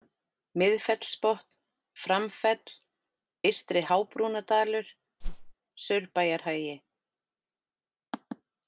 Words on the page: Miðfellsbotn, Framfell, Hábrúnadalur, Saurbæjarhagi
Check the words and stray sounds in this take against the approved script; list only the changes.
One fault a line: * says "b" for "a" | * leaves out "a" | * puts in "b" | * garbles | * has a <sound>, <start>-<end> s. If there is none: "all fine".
* puts in "Eystri"
* has a whoosh, 5.2-5.5 s